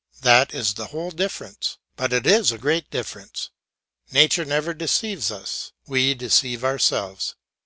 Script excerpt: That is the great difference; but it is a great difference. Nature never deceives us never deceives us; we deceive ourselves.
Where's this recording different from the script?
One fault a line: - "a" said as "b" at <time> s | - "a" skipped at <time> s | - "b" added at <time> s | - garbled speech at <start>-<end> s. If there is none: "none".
- "great" said as "whole" at 0.9 s
- "never deceives us" skipped at 5.7 s